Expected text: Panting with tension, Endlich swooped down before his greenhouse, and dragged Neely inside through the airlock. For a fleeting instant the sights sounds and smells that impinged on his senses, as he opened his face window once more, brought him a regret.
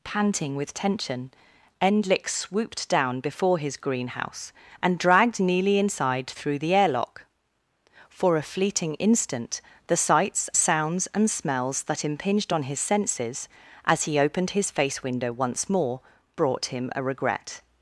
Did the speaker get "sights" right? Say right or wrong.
right